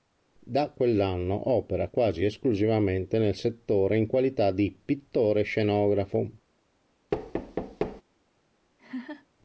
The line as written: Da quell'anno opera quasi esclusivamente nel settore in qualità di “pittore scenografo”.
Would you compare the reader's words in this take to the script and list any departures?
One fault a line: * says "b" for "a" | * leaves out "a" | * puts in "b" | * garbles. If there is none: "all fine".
all fine